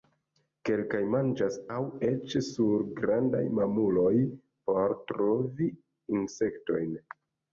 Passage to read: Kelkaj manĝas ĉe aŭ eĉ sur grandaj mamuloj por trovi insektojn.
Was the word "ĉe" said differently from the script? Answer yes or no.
yes